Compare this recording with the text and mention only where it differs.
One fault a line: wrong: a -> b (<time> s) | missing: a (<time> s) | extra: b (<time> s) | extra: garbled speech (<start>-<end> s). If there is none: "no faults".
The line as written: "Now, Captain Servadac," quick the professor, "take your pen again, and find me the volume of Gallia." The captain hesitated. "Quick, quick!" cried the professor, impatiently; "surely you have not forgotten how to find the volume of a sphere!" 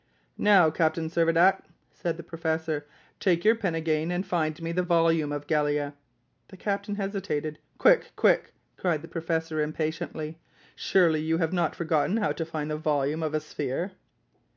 wrong: quick -> said (1.9 s)